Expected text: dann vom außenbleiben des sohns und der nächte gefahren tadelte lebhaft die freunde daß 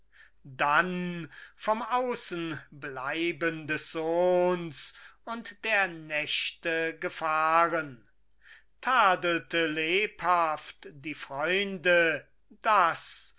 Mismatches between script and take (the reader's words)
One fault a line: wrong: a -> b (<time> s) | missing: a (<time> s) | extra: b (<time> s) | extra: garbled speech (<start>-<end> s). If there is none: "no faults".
no faults